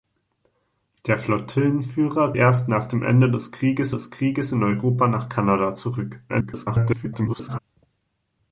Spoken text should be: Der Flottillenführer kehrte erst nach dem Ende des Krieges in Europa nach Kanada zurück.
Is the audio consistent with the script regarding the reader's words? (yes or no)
no